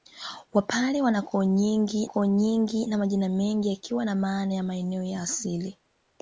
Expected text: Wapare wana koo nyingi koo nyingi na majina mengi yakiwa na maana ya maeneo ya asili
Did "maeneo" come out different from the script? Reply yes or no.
no